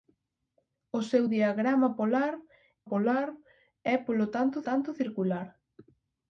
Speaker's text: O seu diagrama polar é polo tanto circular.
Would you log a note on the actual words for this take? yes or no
yes